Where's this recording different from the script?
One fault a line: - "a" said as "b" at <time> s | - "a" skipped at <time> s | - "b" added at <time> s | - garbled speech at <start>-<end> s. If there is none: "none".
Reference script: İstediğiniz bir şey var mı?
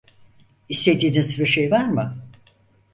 none